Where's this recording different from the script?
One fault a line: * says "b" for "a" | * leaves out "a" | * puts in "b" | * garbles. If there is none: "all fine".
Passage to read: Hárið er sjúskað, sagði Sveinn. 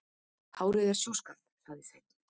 all fine